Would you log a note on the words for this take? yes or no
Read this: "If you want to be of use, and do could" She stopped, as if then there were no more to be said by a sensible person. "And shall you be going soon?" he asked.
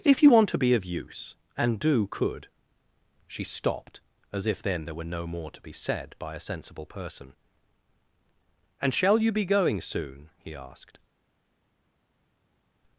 no